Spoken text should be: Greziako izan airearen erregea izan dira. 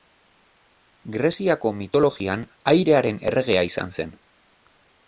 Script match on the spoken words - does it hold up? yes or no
no